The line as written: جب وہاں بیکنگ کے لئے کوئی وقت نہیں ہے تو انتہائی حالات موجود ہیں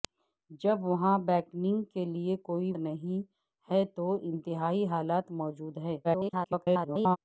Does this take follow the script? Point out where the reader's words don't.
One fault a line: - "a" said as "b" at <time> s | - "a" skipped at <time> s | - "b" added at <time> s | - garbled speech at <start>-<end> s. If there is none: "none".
- "وقت" skipped at 2.7 s
- garbled speech at 6.0-7.2 s